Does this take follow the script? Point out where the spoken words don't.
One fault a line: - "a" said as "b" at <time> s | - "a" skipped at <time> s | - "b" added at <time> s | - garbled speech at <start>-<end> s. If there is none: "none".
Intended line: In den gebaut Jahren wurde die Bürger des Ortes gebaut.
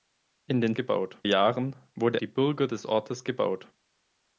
none